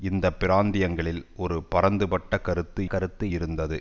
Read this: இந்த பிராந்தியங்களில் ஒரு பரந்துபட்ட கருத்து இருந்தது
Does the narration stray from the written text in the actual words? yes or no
yes